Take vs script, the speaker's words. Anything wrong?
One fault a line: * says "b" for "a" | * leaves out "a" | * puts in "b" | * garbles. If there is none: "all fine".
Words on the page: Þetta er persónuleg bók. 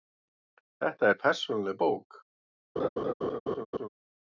all fine